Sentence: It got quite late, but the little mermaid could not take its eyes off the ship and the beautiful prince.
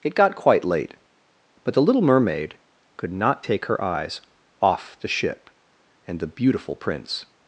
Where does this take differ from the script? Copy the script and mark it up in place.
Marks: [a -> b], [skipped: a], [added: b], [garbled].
It got quite late, but the little mermaid could not take [its -> her] eyes off the ship and the beautiful prince.